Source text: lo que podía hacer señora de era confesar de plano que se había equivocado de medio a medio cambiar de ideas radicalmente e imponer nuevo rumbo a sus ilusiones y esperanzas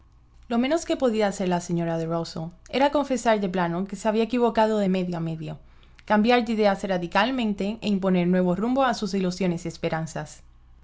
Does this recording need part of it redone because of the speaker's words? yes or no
yes